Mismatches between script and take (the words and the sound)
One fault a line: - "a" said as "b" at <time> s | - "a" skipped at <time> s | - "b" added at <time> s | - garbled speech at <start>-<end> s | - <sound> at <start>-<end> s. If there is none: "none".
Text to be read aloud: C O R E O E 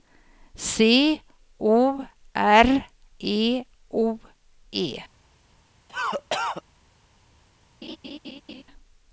- cough at 5.9-6.6 s
- laugh at 7.8-8.6 s